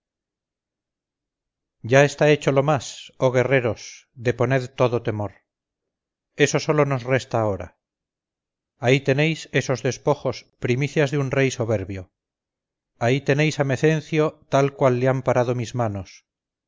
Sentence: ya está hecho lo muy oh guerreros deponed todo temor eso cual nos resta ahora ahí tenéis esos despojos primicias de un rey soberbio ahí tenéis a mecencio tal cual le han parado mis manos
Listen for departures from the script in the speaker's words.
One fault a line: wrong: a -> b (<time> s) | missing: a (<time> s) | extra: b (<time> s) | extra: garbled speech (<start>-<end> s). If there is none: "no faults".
wrong: muy -> más (2.6 s)
wrong: cual -> sólo (6.6 s)